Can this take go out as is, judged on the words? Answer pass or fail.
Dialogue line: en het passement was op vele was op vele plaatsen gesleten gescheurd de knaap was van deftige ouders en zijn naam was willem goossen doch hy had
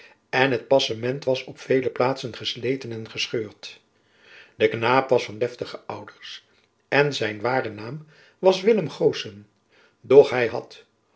fail